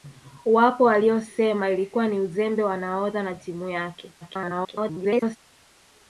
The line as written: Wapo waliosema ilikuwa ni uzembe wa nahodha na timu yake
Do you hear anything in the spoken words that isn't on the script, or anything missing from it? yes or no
yes